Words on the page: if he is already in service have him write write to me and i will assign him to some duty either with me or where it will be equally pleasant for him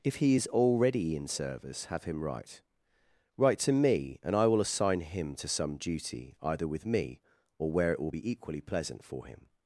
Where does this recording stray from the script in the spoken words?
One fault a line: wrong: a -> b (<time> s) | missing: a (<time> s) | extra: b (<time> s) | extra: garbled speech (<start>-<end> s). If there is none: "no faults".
no faults